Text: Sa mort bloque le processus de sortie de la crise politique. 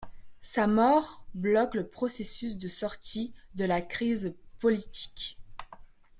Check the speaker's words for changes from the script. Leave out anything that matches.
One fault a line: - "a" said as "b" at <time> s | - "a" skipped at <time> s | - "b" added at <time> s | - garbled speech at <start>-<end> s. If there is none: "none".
none